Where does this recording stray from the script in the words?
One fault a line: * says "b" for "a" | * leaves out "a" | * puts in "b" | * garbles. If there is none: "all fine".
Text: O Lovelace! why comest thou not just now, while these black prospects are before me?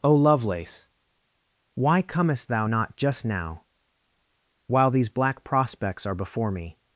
all fine